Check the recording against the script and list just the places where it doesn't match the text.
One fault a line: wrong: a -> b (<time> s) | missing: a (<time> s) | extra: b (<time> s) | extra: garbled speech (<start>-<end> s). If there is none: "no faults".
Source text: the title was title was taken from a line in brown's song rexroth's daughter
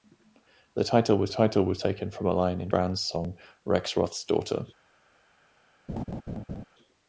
no faults